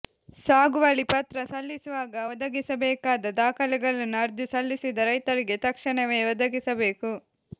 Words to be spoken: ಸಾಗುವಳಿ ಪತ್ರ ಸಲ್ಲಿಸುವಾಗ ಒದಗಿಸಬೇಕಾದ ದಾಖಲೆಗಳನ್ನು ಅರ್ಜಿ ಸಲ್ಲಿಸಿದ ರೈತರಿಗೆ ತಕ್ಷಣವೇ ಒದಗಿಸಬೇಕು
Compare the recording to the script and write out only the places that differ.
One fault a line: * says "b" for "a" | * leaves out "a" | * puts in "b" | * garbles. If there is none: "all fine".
all fine